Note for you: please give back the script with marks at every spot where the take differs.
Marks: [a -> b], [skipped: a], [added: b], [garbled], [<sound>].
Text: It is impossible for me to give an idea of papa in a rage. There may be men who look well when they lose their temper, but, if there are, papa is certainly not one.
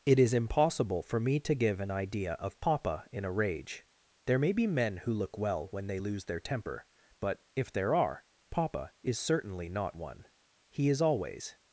It is impossible for me to give an idea of papa in a rage. There may be men who look well when they lose their temper, but, if there are, papa is certainly not one. [added: He is always]